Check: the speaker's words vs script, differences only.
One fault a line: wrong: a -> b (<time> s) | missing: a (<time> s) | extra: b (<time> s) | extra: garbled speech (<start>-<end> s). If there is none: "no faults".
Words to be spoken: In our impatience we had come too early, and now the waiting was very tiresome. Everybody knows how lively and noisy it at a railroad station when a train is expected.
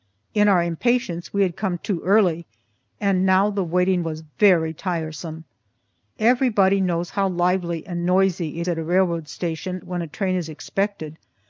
no faults